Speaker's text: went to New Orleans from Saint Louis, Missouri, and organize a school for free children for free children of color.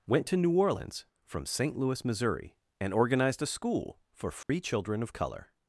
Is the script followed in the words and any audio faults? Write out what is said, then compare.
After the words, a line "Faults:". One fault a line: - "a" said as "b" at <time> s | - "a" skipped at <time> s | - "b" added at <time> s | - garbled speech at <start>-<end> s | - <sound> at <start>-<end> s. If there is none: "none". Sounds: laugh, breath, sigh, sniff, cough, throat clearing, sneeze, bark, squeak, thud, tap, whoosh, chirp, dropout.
went to New Orleans from Saint Louis, Missouri, and organized a school for free children of color.
Faults:
- "organize" said as "organized" at 2.9 s
- dropout at 4.4-4.5 s
- "for free children" skipped at 5.0 s